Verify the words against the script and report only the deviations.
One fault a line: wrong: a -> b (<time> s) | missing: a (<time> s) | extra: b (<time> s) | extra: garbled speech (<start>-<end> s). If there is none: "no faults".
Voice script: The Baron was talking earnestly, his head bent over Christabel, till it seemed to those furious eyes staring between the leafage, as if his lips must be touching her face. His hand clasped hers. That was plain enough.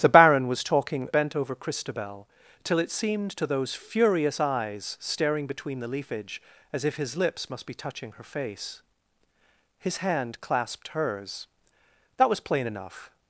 missing: earnestly his head (1.1 s)